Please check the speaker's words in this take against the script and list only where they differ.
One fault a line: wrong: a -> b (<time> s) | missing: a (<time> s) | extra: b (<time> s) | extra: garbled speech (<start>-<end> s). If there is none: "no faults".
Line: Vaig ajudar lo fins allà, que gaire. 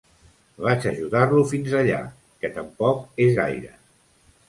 extra: tampoc és (2.6 s)